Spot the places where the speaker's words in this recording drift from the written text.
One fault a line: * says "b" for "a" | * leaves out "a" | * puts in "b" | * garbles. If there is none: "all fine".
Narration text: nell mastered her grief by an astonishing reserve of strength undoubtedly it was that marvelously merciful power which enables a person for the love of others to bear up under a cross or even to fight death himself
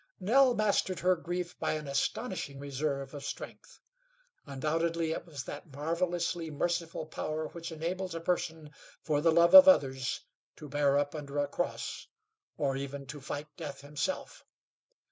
all fine